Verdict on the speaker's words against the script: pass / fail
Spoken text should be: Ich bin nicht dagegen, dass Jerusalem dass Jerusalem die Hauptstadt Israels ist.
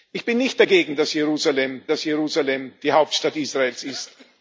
pass